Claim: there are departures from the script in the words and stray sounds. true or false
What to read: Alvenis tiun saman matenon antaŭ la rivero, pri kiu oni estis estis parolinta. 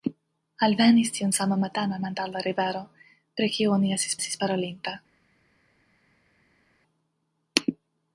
false